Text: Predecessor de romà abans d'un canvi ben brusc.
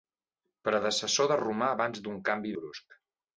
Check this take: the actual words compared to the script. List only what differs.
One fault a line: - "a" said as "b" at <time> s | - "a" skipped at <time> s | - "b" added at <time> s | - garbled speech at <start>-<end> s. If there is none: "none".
- "ben" skipped at 2.6 s